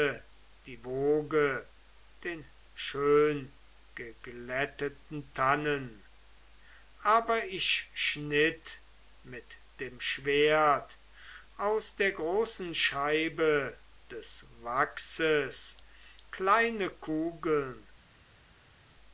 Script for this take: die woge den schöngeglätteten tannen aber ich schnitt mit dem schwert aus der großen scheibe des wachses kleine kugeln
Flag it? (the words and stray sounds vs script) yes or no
no